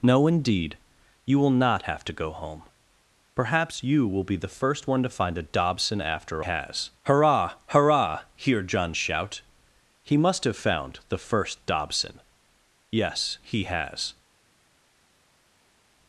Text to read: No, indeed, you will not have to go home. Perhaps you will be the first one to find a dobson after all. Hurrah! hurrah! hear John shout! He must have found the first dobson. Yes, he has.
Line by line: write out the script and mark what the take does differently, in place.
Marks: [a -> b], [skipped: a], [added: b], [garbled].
No, indeed, you will not have to go home. Perhaps you will be the first one to find a dobson after [all. -> has] Hurrah! hurrah! hear John shout! He must have found the first dobson. Yes, he has.